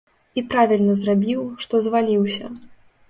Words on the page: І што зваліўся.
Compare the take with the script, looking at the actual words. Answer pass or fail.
fail